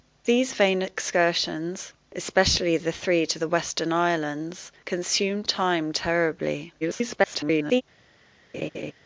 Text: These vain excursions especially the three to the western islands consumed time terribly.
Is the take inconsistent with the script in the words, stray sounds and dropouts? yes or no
yes